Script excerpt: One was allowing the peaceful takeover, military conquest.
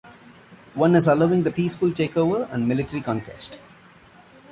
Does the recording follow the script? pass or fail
fail